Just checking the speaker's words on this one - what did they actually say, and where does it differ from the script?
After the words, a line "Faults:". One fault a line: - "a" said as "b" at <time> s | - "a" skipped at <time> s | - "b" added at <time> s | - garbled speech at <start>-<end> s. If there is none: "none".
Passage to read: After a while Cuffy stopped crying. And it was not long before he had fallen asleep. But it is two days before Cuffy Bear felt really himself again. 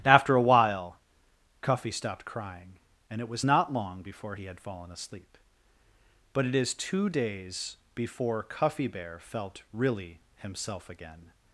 After a while Cuffy stopped crying. And it was not long before he had fallen asleep. But it is two days before Cuffy Bear felt really himself again.
Faults:
none